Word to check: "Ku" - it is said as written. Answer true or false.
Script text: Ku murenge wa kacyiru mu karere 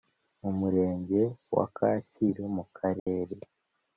false